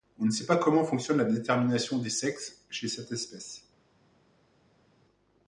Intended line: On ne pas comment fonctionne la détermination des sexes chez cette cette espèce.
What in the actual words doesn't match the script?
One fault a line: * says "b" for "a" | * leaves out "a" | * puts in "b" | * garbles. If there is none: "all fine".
* puts in "sait"
* leaves out "cette"